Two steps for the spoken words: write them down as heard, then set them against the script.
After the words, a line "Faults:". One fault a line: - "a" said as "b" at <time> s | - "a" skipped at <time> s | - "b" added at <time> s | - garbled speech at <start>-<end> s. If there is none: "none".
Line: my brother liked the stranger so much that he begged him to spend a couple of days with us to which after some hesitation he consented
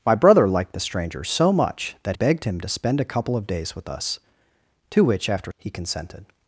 my brother liked the stranger so much that begged him to spend a couple of days with us to which after he consented
Faults:
- "he" skipped at 2.1 s
- "some hesitation" skipped at 5.5 s